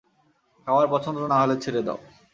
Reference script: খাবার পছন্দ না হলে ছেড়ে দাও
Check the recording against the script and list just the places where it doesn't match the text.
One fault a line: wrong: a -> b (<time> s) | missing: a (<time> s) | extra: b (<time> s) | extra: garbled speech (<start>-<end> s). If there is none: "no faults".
no faults